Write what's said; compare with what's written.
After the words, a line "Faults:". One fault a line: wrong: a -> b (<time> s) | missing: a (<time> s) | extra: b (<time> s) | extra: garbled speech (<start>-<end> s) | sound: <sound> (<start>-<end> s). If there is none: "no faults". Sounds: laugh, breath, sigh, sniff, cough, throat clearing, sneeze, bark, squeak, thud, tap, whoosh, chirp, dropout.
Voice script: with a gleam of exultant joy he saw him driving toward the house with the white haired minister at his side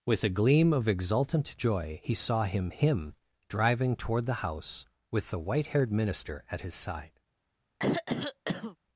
with a gleam of exultant joy he saw him him driving toward the house with the white haired minister at his side
Faults:
extra: him (2.7 s)
sound: throat clearing (7.8-8.8 s)